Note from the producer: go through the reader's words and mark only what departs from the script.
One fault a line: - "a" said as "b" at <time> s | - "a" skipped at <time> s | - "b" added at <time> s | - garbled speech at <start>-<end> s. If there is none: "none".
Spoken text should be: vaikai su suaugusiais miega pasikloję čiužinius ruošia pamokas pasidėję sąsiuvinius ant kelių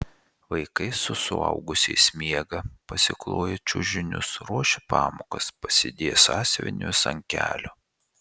none